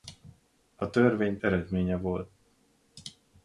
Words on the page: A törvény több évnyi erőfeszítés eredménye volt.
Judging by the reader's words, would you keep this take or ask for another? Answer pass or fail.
fail